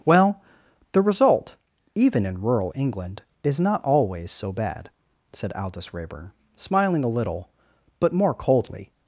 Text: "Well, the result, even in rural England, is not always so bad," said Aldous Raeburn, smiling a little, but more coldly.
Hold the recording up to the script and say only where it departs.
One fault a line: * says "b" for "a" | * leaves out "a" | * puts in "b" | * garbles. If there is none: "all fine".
all fine